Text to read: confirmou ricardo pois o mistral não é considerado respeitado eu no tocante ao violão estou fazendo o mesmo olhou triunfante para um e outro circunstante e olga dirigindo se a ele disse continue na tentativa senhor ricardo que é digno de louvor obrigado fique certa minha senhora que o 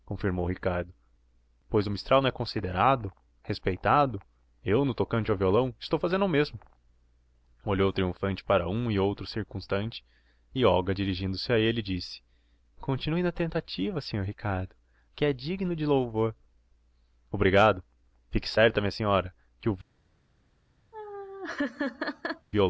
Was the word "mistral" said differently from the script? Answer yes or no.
no